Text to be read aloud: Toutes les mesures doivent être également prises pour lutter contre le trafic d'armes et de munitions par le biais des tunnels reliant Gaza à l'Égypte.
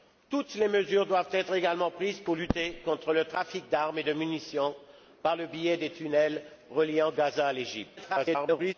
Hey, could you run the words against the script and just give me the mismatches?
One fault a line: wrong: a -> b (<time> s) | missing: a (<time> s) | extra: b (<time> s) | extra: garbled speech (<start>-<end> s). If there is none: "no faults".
extra: garbled speech (8.0-8.7 s)